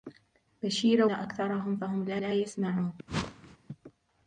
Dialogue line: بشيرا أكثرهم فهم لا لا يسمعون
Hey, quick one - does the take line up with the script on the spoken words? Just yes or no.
yes